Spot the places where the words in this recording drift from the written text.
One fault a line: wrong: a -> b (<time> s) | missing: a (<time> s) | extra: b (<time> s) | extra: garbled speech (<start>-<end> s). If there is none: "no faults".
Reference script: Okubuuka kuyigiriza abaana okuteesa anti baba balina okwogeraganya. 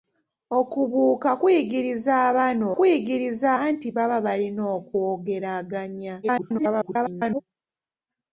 wrong: okuteesa -> kuyigiriza (2.8 s)
extra: garbled speech (6.2-7.4 s)